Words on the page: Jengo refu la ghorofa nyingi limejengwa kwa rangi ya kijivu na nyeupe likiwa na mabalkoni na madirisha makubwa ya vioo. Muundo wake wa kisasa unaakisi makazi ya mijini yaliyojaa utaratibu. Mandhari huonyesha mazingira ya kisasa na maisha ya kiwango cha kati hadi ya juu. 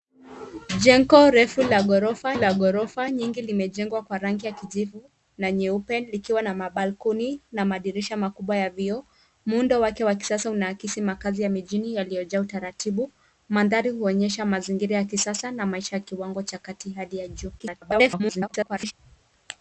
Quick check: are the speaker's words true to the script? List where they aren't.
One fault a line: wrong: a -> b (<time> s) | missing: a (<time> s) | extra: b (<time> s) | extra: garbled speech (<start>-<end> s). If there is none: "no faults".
extra: la ghorofa (2.3 s)
extra: garbled speech (17.6-18.9 s)